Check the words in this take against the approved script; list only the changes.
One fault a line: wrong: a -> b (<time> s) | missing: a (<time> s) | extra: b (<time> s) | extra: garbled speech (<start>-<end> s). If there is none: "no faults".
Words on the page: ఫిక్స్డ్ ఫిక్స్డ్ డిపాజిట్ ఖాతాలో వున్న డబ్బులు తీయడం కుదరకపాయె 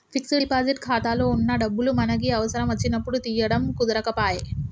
missing: ఫిక్స్డ్ (0.5 s)
extra: మనకి అవసరం వచ్చినప్పుడు (2.0 s)